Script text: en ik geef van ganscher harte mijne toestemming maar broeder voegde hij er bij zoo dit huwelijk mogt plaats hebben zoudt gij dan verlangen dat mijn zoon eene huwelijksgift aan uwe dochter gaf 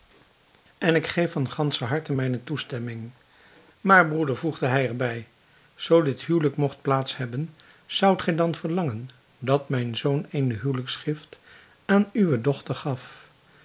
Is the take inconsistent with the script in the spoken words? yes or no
no